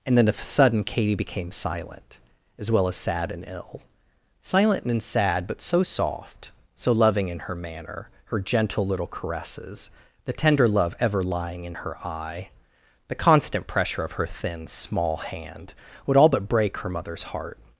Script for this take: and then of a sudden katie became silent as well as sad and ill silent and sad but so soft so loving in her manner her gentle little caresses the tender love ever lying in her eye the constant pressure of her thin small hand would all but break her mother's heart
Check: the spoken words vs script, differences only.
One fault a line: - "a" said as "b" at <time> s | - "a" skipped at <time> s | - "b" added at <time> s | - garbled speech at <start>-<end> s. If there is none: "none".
none